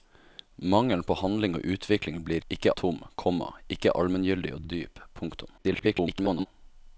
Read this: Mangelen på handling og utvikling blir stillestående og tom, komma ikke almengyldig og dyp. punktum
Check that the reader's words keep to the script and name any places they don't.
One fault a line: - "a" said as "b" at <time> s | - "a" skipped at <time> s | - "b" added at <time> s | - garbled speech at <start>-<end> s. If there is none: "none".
- "stillestående" said as "ikke" at 2.5 s
- "og" added at 4.6 s
- garbled speech at 5.6-6.5 s